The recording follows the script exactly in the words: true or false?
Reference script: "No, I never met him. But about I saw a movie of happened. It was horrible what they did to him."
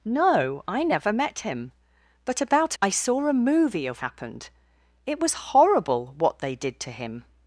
true